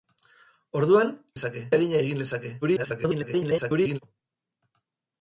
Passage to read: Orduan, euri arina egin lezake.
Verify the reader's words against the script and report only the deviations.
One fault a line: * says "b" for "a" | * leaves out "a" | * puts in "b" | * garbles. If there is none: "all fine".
* says "lezake" for "euri"
* garbles